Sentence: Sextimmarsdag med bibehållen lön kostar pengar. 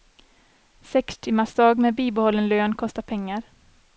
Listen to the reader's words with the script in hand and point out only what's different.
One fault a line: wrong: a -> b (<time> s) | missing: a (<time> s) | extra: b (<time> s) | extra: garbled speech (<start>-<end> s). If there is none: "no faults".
no faults